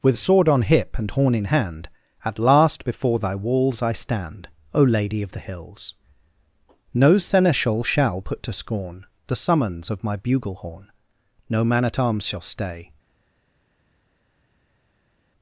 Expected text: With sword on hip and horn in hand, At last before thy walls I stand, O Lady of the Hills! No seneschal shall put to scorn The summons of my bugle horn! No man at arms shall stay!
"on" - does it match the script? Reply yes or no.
yes